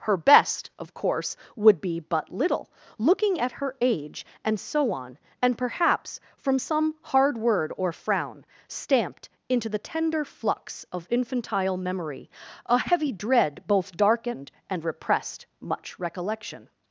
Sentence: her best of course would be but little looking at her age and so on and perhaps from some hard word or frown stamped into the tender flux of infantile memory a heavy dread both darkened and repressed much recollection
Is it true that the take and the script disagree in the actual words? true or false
false